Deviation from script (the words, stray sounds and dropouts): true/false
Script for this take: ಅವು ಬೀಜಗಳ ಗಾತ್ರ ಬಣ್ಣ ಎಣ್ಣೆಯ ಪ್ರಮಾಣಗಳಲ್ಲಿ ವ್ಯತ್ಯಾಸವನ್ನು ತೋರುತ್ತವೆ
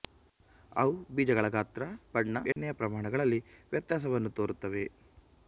true